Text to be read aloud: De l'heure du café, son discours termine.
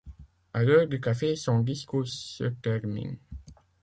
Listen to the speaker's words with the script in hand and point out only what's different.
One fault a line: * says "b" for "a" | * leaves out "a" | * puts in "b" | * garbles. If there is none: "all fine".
* says "À" for "De"
* puts in "se"